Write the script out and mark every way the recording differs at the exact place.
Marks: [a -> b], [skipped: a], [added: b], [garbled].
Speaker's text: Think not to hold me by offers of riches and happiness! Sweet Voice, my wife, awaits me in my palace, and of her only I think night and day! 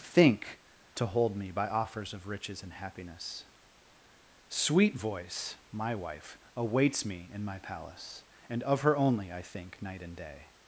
Think [skipped: not] to hold me by offers of riches and happiness! Sweet Voice, my wife, awaits me in my palace, and of her only I think night and day!